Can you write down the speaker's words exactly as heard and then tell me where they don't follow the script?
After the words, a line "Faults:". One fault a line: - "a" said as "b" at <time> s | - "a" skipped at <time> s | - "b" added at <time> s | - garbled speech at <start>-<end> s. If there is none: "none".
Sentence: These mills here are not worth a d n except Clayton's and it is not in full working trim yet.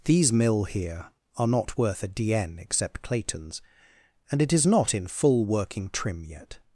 These mill here are not worth a d n except Clayton's and it is not in full working trim yet.
Faults:
- "mills" said as "mill" at 0.3 s